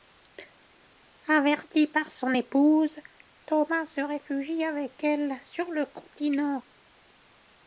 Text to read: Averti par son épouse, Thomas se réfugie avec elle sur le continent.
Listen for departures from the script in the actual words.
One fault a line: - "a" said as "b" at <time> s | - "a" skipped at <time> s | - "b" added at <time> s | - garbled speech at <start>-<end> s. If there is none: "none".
none